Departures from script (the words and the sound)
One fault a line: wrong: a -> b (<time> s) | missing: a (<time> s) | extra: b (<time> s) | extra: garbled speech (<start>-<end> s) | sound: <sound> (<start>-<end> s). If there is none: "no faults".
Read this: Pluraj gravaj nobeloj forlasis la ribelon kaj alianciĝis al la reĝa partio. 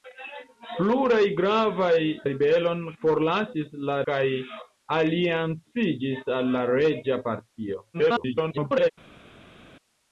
wrong: nobeloj -> ribelon (2.3 s)
missing: ribelon (4.0 s)
extra: garbled speech (7.9-8.9 s)